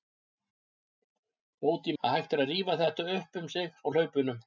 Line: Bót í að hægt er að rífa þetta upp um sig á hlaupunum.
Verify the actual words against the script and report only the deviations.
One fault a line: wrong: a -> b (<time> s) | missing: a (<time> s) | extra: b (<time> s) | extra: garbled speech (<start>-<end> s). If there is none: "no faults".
no faults